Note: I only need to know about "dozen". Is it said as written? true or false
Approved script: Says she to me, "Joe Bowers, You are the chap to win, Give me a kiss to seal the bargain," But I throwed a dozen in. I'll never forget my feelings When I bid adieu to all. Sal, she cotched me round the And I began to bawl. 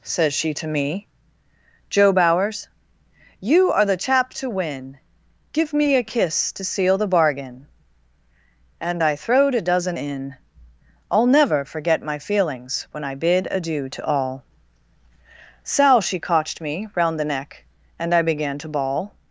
true